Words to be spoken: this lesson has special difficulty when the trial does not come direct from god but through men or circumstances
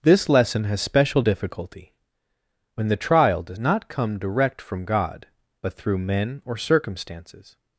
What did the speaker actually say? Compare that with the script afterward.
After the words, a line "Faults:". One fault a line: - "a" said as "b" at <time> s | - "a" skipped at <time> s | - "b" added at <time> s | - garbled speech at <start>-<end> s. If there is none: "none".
this lesson has special difficulty when the trial does not come direct from god but through men or circumstances
Faults:
none